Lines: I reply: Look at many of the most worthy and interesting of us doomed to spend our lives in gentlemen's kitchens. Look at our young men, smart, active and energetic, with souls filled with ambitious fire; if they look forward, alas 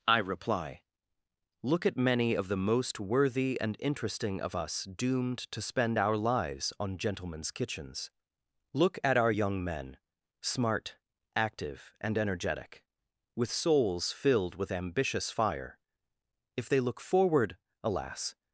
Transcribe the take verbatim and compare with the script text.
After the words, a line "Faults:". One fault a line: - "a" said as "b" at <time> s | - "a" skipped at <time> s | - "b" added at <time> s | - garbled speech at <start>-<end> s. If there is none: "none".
I reply: Look at many of the most worthy and interesting of us doomed to spend our lives on gentlemen's kitchens. Look at our young men, smart, active and energetic, with souls filled with ambitious fire; if they look forward, alas
Faults:
- "in" said as "on" at 6.8 s